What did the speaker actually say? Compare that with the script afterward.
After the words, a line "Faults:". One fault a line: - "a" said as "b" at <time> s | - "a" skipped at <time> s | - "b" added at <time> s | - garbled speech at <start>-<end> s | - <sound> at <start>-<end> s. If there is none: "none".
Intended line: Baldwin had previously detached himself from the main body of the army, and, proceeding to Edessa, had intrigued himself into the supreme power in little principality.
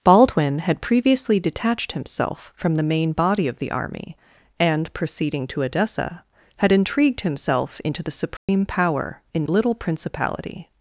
Baldwin had previously detached himself from the main body of the army, and, proceeding to Edessa, had intrigued himself into the supreme power in little principality.
Faults:
- dropout at 8.4-8.5 s